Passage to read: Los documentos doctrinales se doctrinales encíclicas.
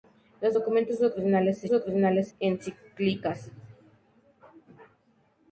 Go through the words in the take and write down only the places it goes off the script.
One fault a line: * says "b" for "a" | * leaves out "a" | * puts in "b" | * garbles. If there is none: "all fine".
all fine